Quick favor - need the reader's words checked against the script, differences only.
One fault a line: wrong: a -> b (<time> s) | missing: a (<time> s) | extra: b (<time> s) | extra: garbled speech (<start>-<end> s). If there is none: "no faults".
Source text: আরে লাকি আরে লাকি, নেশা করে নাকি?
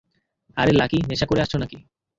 missing: আরে লাকি (1.0 s)
extra: আসছো (1.4 s)